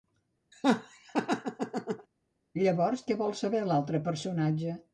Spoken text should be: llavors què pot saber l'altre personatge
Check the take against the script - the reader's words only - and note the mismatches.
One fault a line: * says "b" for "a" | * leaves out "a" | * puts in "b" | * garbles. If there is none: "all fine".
* says "vol" for "pot"